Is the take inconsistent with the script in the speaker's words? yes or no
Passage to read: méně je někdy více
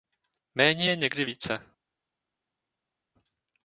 no